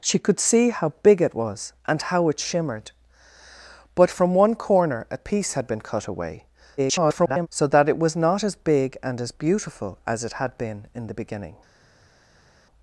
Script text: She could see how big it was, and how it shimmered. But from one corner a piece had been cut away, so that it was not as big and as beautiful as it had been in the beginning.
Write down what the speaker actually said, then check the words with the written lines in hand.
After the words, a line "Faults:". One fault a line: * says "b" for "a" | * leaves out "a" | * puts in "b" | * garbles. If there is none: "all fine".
She could see how big it was, and how it shimmered. But from one corner a piece had been cut away, [garbled] so that it was not as big and as beautiful as it had been in the beginning.
Faults:
* garbles